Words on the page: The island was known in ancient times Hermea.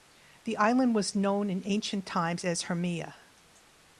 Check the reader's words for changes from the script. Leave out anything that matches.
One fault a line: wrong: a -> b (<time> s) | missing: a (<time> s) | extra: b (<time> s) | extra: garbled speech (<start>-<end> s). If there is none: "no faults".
extra: as (2.4 s)